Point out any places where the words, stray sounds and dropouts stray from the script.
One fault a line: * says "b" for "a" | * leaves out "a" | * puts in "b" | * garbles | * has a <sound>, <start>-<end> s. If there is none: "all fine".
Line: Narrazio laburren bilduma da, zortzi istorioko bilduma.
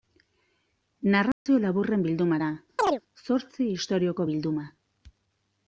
* has a dropout, 1.3-1.5 s
* has a chirp, 2.8-3.0 s